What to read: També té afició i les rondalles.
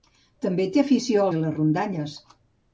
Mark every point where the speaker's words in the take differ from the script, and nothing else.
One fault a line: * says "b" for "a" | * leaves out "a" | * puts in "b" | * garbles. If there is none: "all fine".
all fine